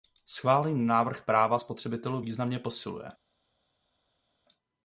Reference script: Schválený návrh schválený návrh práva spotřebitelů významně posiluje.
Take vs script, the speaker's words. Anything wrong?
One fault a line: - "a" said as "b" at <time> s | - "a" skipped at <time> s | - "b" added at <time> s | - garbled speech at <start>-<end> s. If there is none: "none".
- "schválený návrh" skipped at 1.2 s